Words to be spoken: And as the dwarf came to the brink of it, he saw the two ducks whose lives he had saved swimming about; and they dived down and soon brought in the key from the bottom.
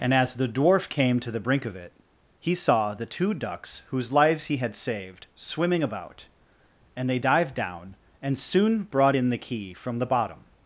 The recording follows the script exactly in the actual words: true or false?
true